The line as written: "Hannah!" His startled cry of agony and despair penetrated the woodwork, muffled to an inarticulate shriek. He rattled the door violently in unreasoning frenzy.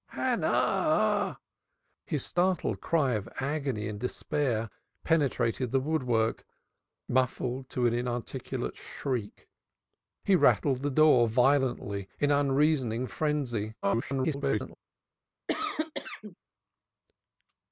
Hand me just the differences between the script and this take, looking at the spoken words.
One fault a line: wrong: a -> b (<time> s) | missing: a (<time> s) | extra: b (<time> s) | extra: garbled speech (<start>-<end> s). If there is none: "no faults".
extra: garbled speech (13.8-14.8 s)